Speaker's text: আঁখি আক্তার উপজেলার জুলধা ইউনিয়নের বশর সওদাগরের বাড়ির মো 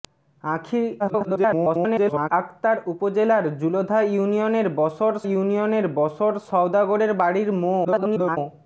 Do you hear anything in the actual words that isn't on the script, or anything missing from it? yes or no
yes